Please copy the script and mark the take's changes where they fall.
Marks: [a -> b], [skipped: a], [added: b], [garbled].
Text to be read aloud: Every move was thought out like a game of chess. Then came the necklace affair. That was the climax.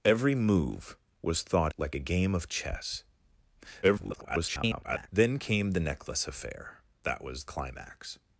Every move was thought [skipped: out] like a game of chess. [garbled] Then came the necklace affair. That was [skipped: the] climax.